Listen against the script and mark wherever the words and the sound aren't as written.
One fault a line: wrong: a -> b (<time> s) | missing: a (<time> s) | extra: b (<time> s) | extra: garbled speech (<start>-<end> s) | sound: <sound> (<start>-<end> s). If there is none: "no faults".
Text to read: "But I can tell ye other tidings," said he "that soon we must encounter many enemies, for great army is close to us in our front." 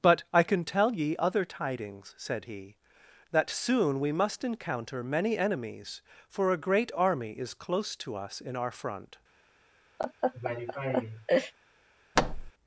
extra: a (6.5 s)
sound: laugh (10.0-11.5 s)
sound: thud (12.2-12.5 s)